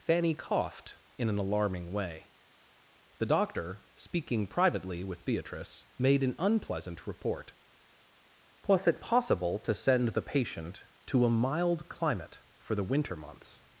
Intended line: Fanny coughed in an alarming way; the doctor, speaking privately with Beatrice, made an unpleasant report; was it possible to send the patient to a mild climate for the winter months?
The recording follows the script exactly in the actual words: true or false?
true